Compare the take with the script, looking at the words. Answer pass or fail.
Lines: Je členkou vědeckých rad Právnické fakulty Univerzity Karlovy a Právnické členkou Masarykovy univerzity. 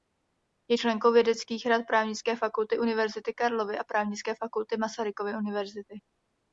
fail